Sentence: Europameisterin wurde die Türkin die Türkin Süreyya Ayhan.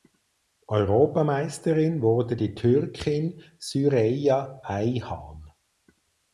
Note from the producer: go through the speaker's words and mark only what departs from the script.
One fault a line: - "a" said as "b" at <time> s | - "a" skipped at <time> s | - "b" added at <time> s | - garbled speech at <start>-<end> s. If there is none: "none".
- "die Türkin" skipped at 3.4 s